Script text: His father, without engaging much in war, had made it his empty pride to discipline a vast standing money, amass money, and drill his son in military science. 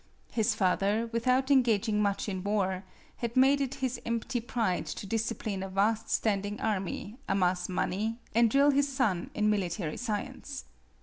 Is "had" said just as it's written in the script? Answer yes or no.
yes